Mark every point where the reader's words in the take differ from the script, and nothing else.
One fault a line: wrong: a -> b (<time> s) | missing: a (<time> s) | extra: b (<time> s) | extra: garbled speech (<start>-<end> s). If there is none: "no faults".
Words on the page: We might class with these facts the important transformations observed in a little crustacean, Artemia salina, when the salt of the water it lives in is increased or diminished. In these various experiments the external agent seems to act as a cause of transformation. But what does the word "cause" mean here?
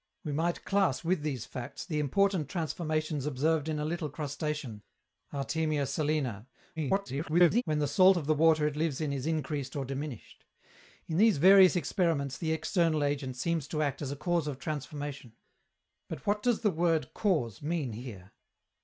extra: garbled speech (6.8-7.6 s)